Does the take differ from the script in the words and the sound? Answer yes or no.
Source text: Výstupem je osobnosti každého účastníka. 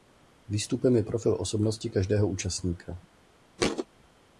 yes